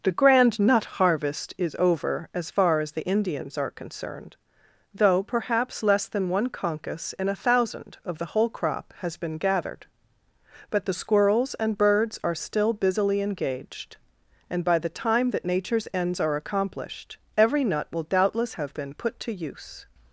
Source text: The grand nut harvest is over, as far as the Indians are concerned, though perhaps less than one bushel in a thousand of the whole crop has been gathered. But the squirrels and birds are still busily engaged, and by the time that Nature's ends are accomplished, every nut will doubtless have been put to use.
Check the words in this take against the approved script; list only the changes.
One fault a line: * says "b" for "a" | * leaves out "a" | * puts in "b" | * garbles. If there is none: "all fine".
* says "concus" for "bushel"